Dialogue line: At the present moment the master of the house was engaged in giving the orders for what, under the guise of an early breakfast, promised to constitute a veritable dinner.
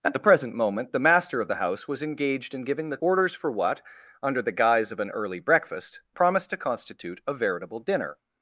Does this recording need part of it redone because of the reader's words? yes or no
no